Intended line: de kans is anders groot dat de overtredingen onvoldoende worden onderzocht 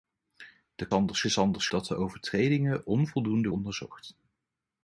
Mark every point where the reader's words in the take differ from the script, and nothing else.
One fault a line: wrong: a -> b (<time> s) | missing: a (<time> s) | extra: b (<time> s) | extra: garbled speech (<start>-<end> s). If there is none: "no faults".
wrong: kans -> anders (0.9 s)
missing: groot (1.7 s)
missing: worden (3.5 s)